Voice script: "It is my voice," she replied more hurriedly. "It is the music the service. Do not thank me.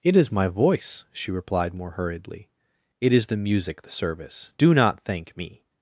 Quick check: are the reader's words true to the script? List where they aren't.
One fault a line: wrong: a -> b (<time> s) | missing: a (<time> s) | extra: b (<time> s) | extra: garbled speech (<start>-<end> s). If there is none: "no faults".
no faults